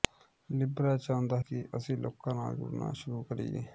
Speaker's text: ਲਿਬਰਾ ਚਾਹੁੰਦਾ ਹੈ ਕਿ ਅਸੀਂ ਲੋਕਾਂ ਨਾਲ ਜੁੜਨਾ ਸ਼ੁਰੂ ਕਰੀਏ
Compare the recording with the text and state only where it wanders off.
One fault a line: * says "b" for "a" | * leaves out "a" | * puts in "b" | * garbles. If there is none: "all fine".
* leaves out "ਹੈ"